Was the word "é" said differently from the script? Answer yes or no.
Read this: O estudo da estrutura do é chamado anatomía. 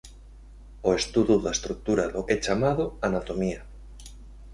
no